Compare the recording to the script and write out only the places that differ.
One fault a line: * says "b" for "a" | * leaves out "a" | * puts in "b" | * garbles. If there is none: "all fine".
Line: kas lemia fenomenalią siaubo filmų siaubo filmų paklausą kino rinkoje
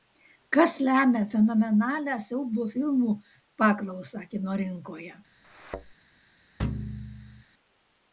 * leaves out "siaubo filmų"